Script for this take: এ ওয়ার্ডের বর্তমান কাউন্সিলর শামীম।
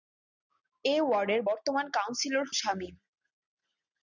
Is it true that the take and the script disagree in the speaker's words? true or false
false